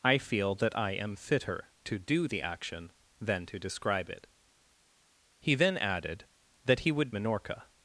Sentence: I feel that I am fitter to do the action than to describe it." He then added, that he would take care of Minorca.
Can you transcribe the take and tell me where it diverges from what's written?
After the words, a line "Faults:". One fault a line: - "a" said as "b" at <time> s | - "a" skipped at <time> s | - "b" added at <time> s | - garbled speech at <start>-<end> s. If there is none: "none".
I feel that I am fitter to do the action than to describe it." He then added, that he would Minorca.
Faults:
- "take care of" skipped at 7.1 s